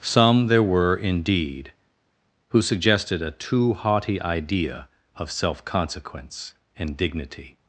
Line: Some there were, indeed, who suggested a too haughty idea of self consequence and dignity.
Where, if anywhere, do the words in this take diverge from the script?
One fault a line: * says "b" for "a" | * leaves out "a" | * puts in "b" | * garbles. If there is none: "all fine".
all fine